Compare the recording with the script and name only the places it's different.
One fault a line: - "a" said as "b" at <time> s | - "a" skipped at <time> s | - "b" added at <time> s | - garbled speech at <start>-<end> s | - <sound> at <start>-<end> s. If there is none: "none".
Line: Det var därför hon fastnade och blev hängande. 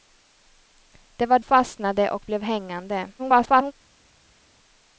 - "därför hon" skipped at 1.4 s
- garbled speech at 3.2-3.7 s